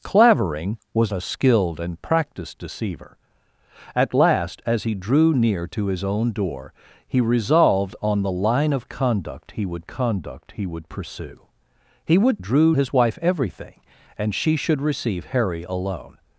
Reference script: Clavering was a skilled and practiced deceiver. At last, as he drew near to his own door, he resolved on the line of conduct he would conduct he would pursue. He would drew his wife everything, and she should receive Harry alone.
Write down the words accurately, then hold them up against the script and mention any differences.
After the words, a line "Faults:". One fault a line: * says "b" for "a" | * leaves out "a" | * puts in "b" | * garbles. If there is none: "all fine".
Clavering was a skilled and practiced deceiver. At last, as he drew near to his own door, he resolved on the line of conduct he would conduct he would pursue. He would drew his wife everything, and she should receive Harry alone.
Faults:
all fine